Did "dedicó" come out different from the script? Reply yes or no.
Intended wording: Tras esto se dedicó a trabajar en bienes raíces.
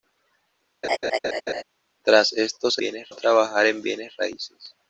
yes